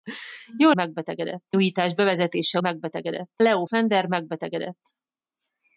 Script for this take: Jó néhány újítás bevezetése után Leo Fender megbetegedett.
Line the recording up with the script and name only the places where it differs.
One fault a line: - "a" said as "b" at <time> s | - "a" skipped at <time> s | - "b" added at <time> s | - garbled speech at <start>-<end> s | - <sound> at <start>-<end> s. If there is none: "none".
- "néhány" said as "megbetegedett" at 0.7 s
- "után" said as "megbetegedett" at 2.6 s